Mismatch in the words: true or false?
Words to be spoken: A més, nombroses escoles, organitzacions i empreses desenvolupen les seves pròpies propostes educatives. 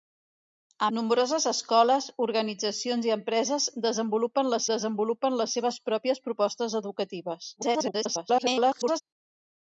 true